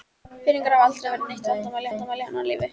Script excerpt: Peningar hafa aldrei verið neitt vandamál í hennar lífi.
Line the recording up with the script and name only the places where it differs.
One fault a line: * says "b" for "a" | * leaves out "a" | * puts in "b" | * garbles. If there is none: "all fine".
* puts in "vandamál"